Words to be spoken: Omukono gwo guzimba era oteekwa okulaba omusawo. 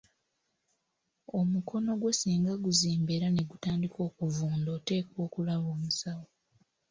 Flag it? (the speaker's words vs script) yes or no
yes